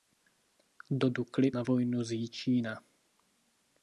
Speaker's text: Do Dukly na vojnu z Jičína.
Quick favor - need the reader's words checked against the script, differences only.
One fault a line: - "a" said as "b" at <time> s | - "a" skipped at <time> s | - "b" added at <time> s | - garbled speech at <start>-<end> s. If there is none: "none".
none